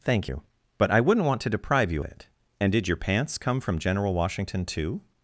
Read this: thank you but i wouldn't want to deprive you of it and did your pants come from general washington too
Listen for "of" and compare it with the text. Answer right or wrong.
wrong